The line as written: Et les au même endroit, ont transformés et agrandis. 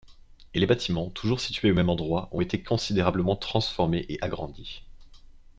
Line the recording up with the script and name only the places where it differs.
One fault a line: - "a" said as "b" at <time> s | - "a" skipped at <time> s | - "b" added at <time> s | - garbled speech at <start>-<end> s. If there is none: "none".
- "bâtiments toujours situés" added at 0.7 s
- "été considérablement" added at 2.4 s